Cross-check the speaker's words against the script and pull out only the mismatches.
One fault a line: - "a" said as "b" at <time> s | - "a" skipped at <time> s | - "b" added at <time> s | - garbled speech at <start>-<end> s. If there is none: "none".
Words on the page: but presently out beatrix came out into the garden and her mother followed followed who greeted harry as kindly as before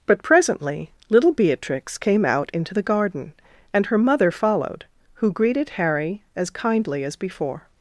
- "out" said as "little" at 1.1 s
- "followed" skipped at 4.8 s